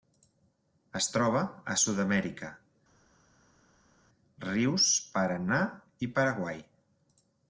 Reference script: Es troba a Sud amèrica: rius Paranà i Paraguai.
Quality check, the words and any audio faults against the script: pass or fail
pass